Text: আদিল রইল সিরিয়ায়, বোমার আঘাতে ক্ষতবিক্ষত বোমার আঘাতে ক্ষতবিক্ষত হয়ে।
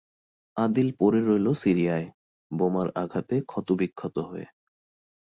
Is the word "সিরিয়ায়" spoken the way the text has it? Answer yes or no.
yes